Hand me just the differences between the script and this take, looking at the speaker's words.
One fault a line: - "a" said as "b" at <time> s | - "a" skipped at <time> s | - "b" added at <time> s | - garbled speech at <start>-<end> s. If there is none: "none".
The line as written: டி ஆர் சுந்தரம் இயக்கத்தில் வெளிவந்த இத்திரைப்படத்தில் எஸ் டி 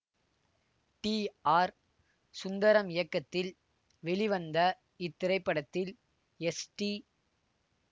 none